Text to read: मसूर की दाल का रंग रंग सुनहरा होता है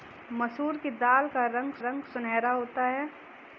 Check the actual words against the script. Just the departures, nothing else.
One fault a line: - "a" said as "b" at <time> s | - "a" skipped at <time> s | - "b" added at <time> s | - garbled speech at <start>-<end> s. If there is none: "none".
none